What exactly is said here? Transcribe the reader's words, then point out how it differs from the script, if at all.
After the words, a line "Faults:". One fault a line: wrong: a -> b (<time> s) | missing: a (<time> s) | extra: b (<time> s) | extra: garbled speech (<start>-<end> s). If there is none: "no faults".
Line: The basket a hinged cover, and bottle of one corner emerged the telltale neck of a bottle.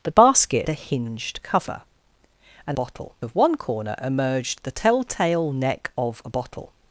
The basket a hinged cover, and bottle of one corner emerged the telltale neck of a bottle.
Faults:
no faults